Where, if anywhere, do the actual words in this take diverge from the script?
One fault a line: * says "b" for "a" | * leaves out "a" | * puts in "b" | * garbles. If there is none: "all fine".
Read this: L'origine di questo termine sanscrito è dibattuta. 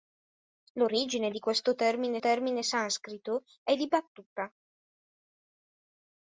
* puts in "termine"